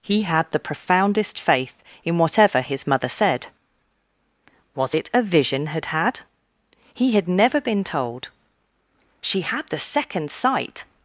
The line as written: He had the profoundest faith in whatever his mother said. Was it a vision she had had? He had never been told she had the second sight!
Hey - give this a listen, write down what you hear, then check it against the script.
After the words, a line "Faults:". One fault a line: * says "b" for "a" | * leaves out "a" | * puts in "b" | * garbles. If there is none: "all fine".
He had the profoundest faith in whatever his mother said. Was it a vision had had? He had never been told she had the second sight!
Faults:
* leaves out "she"